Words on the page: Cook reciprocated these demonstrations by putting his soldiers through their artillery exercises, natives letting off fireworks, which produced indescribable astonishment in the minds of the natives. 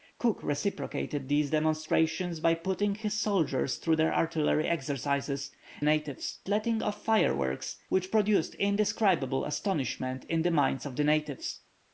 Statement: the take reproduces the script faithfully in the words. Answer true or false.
true